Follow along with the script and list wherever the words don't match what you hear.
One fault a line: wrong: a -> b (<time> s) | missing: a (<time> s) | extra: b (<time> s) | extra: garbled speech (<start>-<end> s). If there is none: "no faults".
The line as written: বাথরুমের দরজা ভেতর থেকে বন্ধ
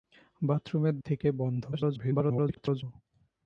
missing: দরজা ভেতর (0.9 s)
extra: garbled speech (1.7-2.8 s)